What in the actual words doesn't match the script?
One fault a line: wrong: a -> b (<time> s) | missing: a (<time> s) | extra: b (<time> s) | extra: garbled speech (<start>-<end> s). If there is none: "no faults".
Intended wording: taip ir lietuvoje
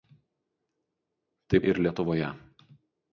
no faults